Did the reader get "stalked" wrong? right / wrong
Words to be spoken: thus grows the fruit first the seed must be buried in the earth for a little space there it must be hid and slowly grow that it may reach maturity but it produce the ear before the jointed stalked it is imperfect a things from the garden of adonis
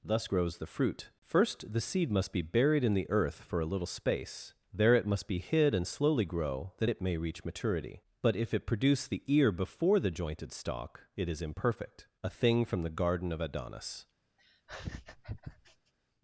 wrong